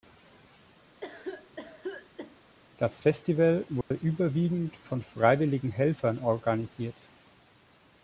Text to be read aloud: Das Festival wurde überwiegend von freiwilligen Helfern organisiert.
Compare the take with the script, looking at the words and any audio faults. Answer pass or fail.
fail